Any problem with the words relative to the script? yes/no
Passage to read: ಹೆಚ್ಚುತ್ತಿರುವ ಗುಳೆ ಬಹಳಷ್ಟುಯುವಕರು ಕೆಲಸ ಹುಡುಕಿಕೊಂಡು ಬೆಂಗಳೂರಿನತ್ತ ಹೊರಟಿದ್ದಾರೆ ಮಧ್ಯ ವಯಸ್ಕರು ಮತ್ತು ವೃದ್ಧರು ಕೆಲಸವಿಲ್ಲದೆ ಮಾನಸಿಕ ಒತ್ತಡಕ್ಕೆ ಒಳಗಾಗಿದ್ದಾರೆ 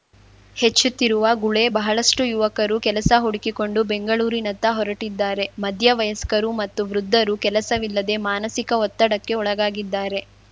no